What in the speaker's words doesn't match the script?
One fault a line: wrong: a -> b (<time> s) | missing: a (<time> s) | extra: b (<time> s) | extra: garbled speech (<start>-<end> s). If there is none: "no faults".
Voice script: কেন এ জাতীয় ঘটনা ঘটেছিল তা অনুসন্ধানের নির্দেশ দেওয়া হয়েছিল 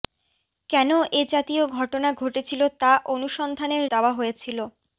missing: নির্দেশ (3.8 s)